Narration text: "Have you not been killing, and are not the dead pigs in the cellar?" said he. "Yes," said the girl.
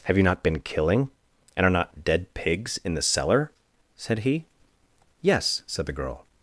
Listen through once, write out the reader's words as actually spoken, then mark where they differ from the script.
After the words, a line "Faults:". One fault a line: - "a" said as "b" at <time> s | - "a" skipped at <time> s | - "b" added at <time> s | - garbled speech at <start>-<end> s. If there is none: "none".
"Have you not been killing, and are not dead pigs in the cellar?" said he. "Yes," said the girl.
Faults:
- "the" skipped at 2.0 s